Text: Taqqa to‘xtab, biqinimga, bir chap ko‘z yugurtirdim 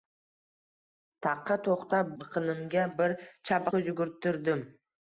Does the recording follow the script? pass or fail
pass